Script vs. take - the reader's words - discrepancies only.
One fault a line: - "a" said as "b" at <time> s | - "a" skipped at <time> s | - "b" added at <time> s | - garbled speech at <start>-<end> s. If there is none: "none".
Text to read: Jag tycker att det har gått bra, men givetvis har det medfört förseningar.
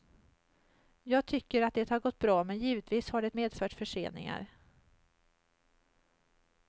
none